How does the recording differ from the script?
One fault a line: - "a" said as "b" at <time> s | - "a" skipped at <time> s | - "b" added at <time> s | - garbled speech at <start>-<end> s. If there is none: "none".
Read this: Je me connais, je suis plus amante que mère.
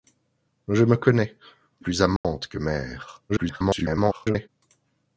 - "je suis" skipped at 1.4 s
- garbled speech at 3.3-4.5 s